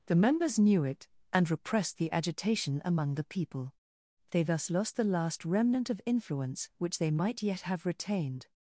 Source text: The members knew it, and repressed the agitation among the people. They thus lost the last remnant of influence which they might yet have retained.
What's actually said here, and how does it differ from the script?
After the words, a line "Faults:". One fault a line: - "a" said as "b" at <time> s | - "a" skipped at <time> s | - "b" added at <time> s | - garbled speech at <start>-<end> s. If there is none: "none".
The members knew it, and repressed the agitation among the people. They thus lost the last remnant of influence which they might yet have retained.
Faults:
none